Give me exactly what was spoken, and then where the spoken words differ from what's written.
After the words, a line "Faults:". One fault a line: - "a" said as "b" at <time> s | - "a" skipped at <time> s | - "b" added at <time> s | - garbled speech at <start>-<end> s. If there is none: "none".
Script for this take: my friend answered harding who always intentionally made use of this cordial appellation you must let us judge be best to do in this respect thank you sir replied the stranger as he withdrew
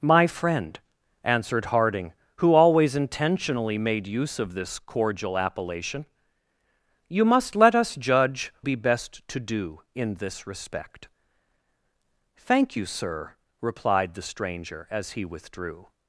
my friend answered harding who always intentionally made use of this cordial appellation you must let us judge be best to do in this respect thank you sir replied the stranger as he withdrew
Faults:
none